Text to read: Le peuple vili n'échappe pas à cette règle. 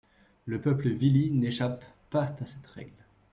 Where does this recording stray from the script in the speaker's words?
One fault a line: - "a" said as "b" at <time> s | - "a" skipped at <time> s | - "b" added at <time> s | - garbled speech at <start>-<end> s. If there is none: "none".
none